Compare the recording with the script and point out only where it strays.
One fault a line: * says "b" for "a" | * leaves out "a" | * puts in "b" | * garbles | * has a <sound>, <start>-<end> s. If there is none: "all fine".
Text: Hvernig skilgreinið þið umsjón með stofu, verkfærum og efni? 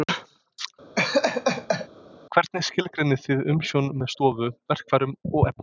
* has a laugh, 1.0-1.9 s